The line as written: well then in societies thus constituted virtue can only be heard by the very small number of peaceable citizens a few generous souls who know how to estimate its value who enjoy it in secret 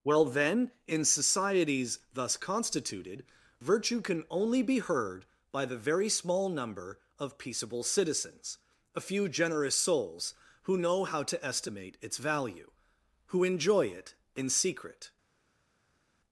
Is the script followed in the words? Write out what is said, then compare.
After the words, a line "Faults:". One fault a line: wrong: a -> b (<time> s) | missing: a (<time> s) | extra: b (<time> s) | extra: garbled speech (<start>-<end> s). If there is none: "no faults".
well then in societies thus constituted virtue can only be heard by the very small number of peaceable citizens a few generous souls who know how to estimate its value who enjoy it in secret
Faults:
no faults